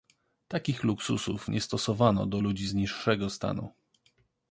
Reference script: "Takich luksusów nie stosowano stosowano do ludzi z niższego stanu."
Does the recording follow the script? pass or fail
fail